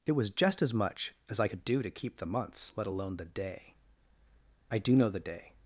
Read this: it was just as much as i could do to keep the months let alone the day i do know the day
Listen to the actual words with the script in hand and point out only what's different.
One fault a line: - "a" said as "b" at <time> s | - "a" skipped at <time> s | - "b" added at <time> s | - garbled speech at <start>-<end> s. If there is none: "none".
none